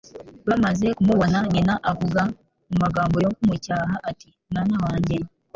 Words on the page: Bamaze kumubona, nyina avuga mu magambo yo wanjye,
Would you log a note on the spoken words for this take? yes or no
yes